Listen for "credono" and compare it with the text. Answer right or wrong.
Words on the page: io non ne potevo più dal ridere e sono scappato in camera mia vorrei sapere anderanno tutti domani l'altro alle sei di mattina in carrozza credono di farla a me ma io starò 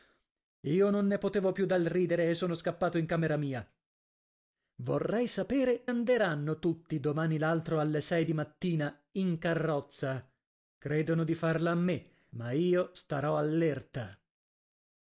right